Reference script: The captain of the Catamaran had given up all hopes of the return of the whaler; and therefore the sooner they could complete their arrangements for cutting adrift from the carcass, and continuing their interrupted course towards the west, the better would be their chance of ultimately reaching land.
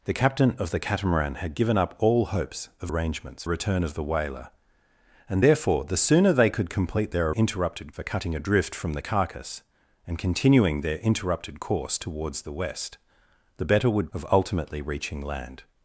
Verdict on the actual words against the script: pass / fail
fail